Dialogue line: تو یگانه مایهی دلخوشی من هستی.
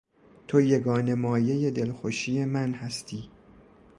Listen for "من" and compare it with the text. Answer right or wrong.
right